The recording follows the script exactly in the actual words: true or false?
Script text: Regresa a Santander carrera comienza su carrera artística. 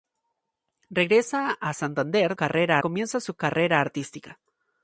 true